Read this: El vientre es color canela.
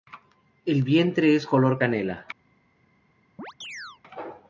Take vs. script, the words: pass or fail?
pass